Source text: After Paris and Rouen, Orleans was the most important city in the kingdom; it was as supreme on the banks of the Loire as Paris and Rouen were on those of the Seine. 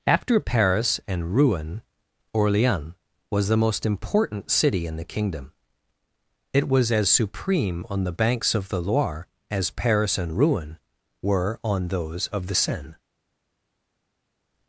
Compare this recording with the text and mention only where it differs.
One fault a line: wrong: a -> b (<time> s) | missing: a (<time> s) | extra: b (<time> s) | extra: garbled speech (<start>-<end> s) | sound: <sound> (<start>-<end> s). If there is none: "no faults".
no faults